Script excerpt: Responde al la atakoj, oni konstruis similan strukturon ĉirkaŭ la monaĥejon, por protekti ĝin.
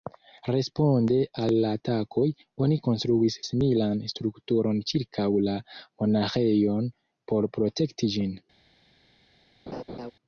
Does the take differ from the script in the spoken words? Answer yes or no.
no